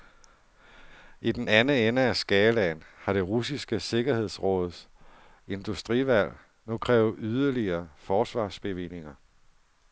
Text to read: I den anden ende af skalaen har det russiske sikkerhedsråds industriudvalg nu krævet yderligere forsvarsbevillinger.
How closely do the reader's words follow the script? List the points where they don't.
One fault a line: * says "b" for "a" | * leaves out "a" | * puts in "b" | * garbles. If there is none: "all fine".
all fine